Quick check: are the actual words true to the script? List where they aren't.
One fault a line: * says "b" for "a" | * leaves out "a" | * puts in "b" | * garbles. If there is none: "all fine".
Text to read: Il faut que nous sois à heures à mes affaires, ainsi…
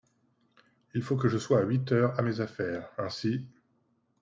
* says "je" for "nous"
* puts in "huit"